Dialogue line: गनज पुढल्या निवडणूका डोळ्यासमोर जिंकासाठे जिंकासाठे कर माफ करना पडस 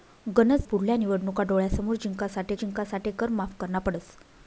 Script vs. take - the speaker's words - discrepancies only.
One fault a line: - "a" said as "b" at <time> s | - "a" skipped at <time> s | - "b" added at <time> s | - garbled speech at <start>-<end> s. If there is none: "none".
none